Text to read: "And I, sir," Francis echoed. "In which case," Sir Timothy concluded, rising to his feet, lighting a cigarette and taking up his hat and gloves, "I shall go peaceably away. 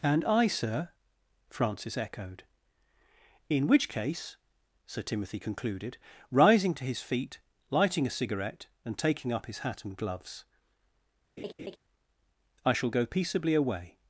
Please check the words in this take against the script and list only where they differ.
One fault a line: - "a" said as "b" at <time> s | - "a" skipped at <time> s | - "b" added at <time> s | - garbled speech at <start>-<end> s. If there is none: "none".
none